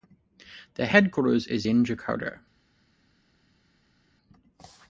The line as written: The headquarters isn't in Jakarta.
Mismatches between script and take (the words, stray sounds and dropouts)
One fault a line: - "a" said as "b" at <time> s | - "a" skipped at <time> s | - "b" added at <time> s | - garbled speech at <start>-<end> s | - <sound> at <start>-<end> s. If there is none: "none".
- "isn't" said as "is" at 1.5 s